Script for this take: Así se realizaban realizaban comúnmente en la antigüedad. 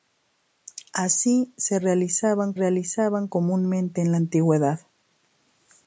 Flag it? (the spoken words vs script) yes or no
no